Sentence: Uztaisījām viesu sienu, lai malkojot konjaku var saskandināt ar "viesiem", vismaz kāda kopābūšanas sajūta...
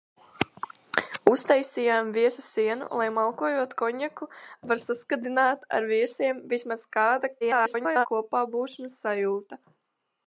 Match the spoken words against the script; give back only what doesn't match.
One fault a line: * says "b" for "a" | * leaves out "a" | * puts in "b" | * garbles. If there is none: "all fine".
* garbles